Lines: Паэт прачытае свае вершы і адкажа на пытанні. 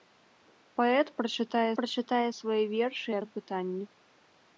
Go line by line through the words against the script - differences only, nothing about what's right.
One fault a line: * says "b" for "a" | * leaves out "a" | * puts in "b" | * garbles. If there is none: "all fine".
* puts in "прачытае"
* leaves out "адкажа"